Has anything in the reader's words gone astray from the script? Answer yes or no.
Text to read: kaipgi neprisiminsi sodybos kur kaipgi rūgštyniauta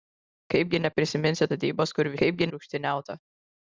no